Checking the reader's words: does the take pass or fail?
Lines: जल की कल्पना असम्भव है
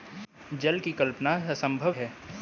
pass